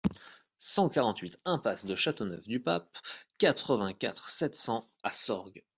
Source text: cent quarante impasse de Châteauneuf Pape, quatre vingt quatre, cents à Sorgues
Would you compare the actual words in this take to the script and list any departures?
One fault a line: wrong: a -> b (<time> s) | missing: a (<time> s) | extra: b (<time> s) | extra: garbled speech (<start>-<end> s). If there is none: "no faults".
extra: huit (1.2 s)
extra: du (2.5 s)
extra: sept (4.3 s)